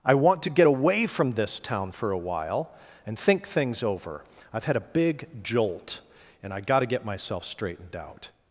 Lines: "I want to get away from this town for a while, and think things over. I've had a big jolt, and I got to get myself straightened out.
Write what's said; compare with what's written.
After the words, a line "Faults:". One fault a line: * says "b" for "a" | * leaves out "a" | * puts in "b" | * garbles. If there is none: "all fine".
"I want to get away from this town for a while, and think things over. I've had a big jolt, and I got to get myself straightened out.
Faults:
all fine